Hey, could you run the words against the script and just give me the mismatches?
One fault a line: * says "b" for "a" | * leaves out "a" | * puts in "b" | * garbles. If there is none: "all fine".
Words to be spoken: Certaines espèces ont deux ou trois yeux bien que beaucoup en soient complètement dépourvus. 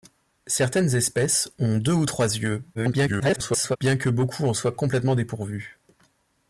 * garbles